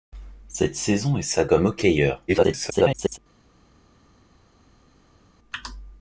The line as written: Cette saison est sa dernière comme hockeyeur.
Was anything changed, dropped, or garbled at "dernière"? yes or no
yes